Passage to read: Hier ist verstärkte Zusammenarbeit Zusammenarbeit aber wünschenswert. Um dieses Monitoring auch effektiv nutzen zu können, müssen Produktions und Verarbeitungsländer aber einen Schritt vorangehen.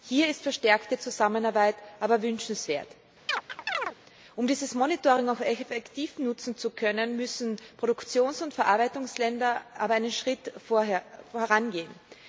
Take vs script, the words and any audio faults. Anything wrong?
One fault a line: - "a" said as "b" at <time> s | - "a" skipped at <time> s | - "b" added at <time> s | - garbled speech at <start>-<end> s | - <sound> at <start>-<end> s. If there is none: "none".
- "Zusammenarbeit" skipped at 1.8 s
- chirp at 3.3-4.0 s